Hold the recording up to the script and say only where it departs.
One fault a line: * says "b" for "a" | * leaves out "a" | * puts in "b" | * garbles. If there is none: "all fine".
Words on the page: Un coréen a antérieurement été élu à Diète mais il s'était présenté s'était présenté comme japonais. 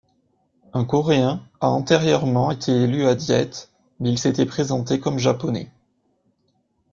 * leaves out "s'était présenté"